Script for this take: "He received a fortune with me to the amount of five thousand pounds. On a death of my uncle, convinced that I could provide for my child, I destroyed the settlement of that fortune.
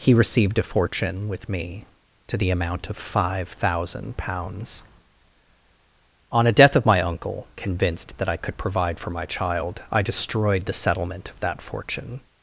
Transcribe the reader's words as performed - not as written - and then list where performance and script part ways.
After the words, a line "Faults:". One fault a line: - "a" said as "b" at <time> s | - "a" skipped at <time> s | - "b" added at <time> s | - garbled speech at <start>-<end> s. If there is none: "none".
"He received a fortune with me to the amount of five thousand pounds. On a death of my uncle, convinced that I could provide for my child, I destroyed the settlement of that fortune.
Faults:
none